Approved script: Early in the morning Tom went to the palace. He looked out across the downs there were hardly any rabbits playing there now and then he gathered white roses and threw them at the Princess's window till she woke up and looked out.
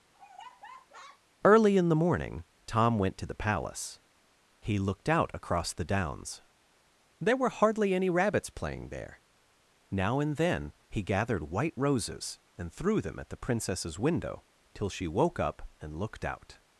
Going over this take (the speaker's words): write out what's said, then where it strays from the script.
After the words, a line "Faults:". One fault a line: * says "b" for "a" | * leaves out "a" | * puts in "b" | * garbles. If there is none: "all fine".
Early in the morning Tom went to the palace. He looked out across the downs there were hardly any rabbits playing there now and then he gathered white roses and threw them at the Princess's window till she woke up and looked out.
Faults:
all fine